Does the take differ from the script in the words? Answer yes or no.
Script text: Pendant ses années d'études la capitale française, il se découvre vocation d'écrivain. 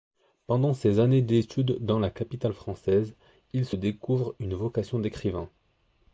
yes